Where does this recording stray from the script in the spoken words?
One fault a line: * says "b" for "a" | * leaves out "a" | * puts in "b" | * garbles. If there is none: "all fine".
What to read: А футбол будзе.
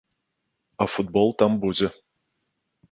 * puts in "там"